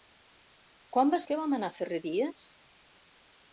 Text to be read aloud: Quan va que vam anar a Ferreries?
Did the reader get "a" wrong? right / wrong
right